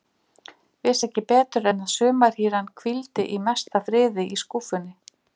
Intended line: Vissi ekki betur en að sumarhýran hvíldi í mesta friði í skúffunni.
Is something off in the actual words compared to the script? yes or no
no